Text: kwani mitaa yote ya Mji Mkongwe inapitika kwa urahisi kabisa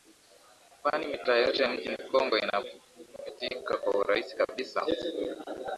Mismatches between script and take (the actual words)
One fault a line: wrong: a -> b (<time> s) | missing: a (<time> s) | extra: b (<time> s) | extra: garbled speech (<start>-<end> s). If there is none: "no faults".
missing: ya (1.6 s)